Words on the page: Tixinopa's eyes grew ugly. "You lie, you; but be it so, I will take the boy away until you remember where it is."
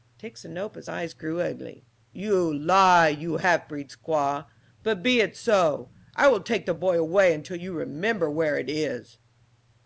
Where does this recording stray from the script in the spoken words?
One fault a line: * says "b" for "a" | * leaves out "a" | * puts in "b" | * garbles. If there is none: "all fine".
* puts in "half breed squaw"